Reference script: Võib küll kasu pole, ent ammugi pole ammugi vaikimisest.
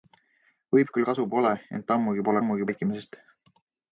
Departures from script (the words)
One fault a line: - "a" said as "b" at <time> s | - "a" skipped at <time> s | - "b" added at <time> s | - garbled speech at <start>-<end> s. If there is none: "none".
none